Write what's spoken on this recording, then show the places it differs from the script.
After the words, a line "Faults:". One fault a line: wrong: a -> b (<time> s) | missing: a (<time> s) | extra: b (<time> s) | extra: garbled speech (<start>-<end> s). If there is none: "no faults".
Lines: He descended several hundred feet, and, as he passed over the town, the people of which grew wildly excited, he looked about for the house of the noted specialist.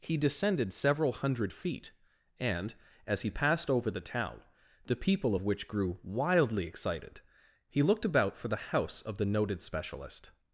He descended several hundred feet, and, as he passed over the town, the people of which grew wildly excited, he looked about for the house of the noted specialist.
Faults:
no faults